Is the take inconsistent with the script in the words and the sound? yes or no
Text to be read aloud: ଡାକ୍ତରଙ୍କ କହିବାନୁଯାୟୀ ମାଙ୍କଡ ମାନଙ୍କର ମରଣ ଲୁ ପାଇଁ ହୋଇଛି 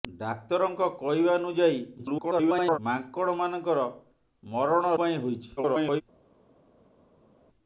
yes